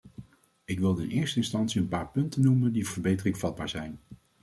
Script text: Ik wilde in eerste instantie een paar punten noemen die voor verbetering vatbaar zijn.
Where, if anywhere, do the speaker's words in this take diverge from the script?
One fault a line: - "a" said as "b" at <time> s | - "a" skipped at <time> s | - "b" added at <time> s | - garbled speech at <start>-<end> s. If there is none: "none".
- "voor" skipped at 2.9 s